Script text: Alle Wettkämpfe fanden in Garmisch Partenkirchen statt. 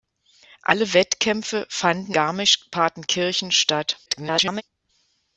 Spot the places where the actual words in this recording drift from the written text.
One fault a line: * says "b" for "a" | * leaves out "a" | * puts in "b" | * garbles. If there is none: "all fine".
* leaves out "in"
* garbles